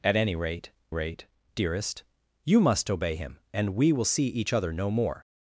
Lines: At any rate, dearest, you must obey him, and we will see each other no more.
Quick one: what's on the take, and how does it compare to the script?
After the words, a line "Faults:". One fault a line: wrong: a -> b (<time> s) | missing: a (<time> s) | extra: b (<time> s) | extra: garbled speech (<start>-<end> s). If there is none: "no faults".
At any rate rate, dearest, you must obey him, and we will see each other no more.
Faults:
extra: rate (0.9 s)